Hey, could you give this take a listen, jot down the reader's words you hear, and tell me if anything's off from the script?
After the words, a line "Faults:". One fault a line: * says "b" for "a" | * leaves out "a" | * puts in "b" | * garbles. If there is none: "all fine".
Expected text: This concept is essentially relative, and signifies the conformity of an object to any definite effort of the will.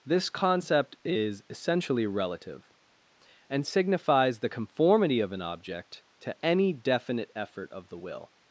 This concept is essentially relative, and signifies the conformity of an object to any definite effort of the will.
Faults:
all fine